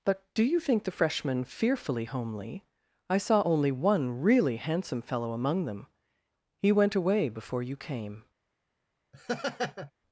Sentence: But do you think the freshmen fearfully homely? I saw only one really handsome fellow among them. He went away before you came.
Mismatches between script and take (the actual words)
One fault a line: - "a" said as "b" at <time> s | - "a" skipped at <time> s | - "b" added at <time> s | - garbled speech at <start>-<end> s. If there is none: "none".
none